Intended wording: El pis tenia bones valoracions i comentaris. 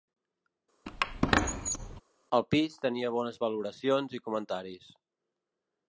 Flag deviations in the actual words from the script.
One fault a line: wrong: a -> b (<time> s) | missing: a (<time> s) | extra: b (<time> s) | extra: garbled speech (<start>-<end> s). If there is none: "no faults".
no faults